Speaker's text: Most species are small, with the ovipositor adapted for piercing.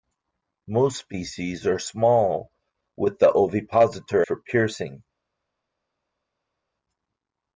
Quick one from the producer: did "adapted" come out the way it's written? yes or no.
no